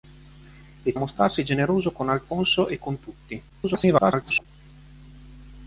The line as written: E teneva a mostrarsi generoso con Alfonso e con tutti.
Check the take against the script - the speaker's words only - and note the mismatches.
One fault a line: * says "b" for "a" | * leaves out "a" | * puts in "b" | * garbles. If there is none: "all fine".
* leaves out "teneva"
* garbles